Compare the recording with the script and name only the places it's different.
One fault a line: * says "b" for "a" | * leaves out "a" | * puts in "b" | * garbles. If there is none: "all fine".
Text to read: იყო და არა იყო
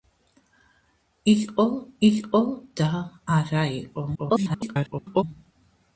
* puts in "იყო"
* garbles